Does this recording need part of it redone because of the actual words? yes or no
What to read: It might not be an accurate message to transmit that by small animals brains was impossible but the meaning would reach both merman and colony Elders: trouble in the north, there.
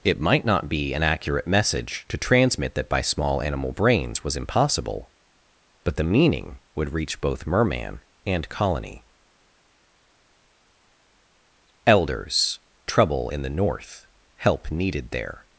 yes